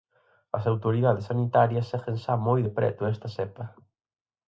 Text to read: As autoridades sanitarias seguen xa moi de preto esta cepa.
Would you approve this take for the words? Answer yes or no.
yes